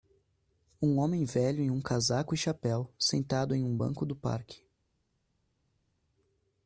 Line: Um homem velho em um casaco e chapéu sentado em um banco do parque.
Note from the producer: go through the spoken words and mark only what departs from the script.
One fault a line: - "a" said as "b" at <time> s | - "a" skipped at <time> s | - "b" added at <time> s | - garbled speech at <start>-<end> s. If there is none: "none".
none